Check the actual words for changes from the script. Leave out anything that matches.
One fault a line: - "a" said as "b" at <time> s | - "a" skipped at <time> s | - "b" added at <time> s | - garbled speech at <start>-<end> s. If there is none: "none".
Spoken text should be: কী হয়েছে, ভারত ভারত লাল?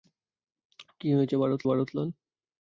none